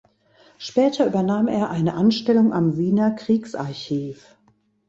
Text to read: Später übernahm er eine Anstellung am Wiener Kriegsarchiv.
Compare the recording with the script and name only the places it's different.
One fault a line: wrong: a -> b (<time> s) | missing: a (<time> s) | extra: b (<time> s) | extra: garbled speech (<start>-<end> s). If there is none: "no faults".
no faults